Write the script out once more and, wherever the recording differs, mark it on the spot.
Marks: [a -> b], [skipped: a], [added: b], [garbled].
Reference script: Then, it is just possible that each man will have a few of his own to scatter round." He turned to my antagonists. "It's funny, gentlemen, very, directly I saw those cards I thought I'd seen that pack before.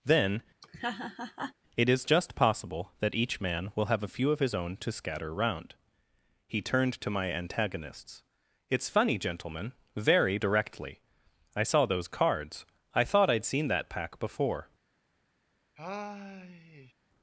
Then, it is just possible that each man will have a few of his own to scatter round." He turned to my antagonists. "It's funny, gentlemen, very, directly I saw those cards I thought I'd seen that pack before.